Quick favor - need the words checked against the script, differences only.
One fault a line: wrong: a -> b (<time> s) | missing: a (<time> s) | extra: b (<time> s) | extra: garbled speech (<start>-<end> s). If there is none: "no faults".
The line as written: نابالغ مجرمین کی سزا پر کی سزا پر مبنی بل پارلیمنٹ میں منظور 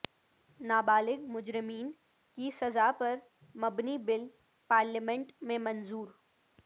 missing: کی سزا پر (3.1 s)